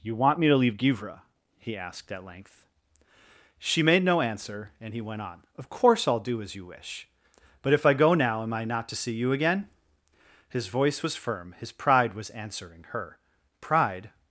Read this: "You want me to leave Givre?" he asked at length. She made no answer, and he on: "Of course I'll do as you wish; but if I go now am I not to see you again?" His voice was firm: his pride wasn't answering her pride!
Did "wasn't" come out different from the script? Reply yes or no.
yes